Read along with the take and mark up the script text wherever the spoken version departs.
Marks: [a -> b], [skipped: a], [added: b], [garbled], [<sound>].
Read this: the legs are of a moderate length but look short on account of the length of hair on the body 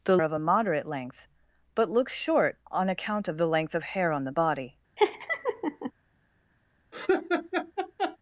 the [skipped: legs are] of a moderate length but look short on account of the length of hair on the body [laugh] [laugh]